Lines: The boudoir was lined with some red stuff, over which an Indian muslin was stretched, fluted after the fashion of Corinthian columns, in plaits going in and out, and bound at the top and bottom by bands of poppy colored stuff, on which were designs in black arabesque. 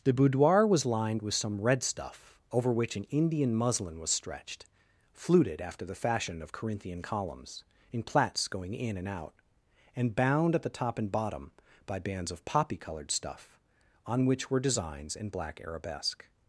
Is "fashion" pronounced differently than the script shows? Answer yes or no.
no